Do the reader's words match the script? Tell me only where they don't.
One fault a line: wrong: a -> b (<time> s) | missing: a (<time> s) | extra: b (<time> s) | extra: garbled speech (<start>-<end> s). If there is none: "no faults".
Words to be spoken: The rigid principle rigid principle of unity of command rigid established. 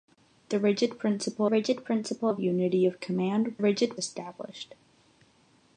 no faults